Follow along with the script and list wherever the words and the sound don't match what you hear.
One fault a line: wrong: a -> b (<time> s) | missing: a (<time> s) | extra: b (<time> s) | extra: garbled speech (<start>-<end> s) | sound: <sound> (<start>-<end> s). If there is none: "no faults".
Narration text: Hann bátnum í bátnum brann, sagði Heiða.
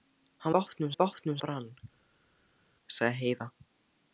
no faults